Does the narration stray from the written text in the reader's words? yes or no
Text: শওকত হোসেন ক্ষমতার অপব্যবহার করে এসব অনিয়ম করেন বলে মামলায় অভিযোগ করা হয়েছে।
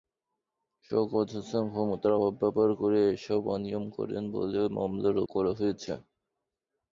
yes